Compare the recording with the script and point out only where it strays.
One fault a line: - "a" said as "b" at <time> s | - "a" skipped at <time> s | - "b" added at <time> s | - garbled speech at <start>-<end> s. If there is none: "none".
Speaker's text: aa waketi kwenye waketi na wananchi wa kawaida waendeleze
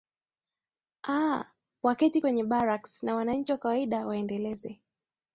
- "waketi" said as "barracks" at 2.4 s